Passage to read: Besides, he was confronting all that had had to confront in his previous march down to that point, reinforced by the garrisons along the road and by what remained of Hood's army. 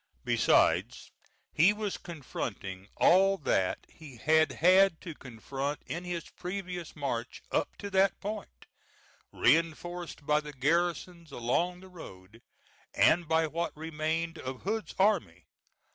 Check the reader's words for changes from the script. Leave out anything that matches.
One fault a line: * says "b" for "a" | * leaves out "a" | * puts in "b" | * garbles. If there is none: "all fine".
* puts in "he"
* says "up" for "down"